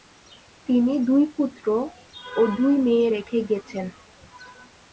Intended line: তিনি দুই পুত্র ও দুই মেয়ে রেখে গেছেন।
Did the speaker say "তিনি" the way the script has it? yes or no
yes